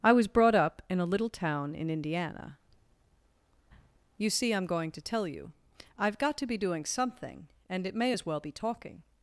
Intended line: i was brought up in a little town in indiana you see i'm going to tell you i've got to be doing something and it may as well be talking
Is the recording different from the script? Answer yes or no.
no